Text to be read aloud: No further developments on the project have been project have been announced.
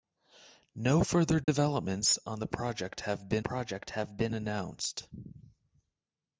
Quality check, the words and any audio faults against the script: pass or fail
fail